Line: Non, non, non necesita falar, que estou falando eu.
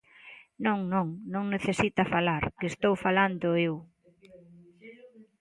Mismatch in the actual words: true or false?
false